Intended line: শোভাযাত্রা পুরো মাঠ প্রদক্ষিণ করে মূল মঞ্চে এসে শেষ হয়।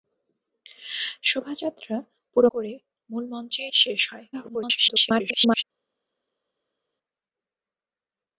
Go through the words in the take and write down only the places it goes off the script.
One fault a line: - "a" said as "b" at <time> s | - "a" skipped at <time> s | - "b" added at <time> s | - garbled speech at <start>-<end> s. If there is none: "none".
- "মাঠ প্রদক্ষিণ" skipped at 2.5 s
- "এসে" skipped at 3.6 s
- garbled speech at 4.3-5.6 s